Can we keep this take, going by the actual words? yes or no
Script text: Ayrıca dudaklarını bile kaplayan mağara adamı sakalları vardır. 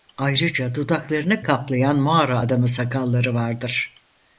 no